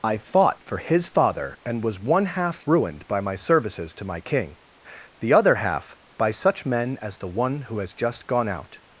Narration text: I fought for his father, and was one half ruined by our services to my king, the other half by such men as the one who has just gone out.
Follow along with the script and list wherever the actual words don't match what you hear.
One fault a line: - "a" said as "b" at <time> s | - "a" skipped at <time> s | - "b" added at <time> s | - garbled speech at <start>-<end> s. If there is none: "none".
- "our" said as "my" at 3.2 s